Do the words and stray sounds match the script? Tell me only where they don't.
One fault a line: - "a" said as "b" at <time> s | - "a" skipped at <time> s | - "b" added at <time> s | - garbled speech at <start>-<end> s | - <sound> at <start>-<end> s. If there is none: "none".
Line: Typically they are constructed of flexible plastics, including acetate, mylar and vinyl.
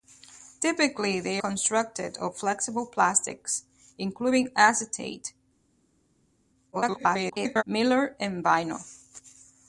- "are" skipped at 1.4 s
- garbled speech at 6.7-7.6 s